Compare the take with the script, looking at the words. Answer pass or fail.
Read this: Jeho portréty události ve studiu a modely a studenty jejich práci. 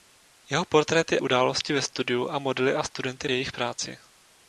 pass